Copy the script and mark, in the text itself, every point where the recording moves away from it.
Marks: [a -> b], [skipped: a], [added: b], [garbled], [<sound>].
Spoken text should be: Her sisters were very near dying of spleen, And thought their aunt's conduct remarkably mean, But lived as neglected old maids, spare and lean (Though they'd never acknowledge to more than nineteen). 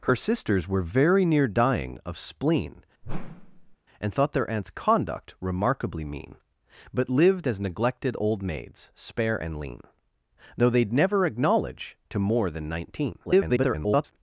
Her sisters were very near dying of spleen, [whoosh] And thought their aunt's conduct remarkably mean, But lived as neglected old maids, spare and lean (Though they'd never acknowledge to more than nineteen). [garbled]